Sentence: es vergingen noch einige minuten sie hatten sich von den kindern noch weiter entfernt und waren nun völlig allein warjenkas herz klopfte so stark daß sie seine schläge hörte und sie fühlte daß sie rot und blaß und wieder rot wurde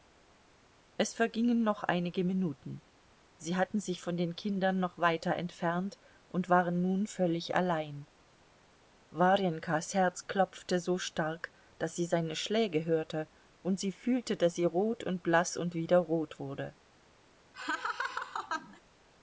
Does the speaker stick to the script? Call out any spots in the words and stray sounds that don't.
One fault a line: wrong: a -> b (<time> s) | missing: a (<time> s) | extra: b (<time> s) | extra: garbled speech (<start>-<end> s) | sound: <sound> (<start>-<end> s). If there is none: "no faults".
sound: laugh (17.5-18.8 s)